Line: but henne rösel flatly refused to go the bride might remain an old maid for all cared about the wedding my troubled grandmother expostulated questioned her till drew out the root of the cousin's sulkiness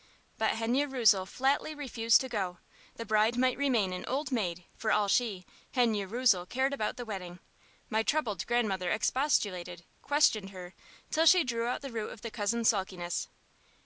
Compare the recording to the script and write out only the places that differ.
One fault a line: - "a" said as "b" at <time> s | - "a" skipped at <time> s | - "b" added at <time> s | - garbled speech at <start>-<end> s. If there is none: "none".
- "she henne rösel" added at 5.1 s
- "she" added at 11.2 s